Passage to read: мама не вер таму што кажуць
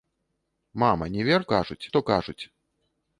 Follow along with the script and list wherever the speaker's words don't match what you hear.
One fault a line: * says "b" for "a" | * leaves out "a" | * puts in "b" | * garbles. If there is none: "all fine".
* says "кажуць" for "таму"